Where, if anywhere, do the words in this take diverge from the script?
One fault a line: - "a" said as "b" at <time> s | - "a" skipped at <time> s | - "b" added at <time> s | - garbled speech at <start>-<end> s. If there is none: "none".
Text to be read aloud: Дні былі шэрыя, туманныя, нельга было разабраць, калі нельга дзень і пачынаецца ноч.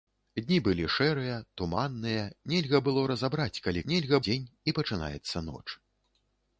none